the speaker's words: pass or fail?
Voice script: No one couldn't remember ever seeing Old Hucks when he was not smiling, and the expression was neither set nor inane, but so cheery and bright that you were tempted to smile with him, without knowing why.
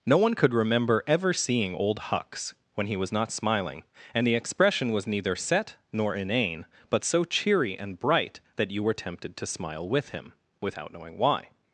fail